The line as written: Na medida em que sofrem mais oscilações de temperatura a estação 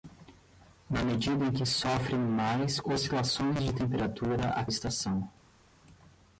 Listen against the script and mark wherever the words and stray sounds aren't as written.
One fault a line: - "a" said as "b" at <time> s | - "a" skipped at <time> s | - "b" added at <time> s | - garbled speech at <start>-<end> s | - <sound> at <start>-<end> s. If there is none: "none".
none